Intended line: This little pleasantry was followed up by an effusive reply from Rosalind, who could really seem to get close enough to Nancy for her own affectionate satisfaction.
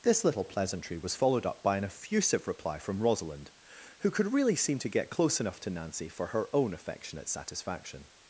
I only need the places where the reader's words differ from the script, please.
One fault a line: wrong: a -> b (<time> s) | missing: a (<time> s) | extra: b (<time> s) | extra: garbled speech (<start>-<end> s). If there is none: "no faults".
no faults